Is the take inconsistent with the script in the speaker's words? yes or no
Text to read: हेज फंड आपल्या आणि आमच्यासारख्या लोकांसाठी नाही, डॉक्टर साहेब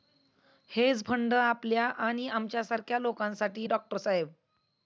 yes